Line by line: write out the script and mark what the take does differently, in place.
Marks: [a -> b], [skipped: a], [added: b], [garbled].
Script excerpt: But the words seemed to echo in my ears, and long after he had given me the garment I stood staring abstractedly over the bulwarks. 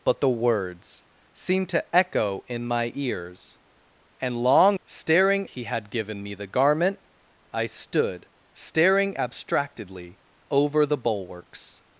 But the words seemed to echo in my ears, and long [after -> staring] he had given me the garment I stood staring abstractedly over the bulwarks.